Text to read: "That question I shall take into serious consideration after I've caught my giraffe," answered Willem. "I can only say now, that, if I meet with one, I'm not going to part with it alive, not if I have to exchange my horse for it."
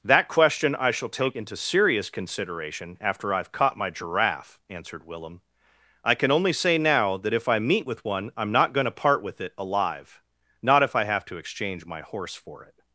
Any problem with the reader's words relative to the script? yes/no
no